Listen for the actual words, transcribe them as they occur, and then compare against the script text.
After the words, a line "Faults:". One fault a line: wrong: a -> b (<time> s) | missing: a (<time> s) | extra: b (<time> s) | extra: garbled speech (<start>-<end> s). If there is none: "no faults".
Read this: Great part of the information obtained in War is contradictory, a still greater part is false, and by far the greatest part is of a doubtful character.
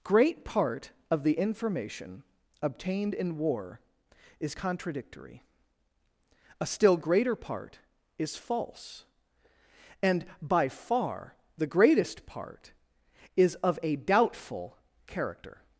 Great part of the information obtained in War is contradictory, a still greater part is false, and by far the greatest part is of a doubtful character.
Faults:
no faults